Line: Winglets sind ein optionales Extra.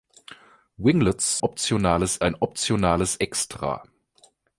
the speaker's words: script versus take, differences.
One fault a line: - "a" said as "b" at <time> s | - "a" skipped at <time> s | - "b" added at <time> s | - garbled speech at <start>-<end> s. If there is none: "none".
- "sind" said as "optionales" at 1.4 s